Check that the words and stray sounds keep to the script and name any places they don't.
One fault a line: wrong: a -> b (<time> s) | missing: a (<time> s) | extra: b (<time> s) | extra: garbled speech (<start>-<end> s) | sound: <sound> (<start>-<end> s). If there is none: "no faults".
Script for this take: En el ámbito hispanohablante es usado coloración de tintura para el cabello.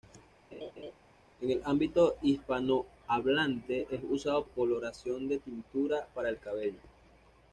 sound: laugh (0.5-0.9 s)